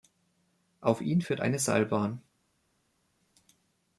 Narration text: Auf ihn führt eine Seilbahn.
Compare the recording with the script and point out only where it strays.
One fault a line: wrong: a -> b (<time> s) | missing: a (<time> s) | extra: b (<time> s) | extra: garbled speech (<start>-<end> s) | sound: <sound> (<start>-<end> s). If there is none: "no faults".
no faults